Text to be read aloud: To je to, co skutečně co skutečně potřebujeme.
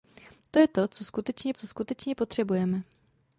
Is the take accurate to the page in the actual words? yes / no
yes